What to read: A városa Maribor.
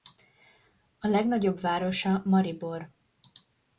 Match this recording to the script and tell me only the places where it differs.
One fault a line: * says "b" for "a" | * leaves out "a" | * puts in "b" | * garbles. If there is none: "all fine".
* puts in "legnagyobb"